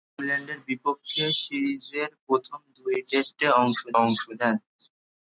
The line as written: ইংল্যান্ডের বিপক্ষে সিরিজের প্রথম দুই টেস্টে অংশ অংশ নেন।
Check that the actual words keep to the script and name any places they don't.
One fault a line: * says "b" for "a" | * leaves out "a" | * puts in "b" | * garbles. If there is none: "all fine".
all fine